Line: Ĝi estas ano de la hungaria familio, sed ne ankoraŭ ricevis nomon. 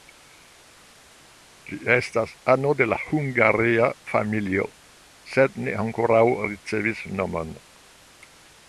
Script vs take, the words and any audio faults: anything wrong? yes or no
no